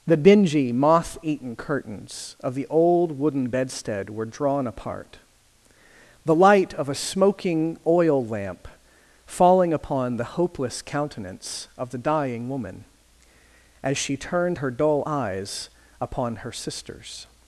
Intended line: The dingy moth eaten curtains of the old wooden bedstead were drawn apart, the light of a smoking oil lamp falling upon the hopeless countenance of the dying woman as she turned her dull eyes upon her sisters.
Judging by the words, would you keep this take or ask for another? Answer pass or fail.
pass